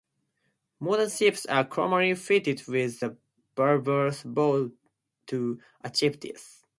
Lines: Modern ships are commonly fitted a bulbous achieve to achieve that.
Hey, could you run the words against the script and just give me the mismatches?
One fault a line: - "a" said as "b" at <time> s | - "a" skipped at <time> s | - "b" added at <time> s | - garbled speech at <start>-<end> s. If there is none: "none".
- "with" added at 2.7 s
- "achieve" said as "bow" at 4.2 s
- "that" said as "this" at 6.2 s